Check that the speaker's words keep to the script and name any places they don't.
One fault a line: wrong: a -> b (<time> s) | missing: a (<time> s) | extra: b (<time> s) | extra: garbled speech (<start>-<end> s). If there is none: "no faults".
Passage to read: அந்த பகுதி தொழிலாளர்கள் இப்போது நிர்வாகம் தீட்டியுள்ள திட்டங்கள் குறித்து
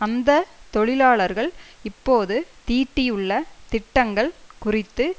missing: பகுதி (0.3 s)
missing: நிர்வாகம் (2.3 s)